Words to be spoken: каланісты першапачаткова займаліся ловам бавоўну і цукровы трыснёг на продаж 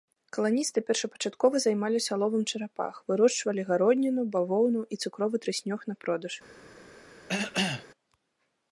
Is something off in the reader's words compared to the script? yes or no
yes